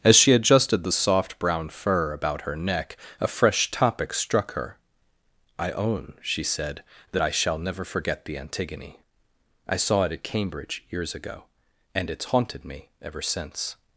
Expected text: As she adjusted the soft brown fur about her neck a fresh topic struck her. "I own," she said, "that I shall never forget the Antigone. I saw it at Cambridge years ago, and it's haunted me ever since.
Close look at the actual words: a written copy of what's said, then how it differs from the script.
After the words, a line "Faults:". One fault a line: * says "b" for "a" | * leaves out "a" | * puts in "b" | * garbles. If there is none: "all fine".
As she adjusted the soft brown fur about her neck a fresh topic struck her. "I own," she said, "that I shall never forget the Antigone. I saw it at Cambridge years ago, and it's haunted me ever since.
Faults:
all fine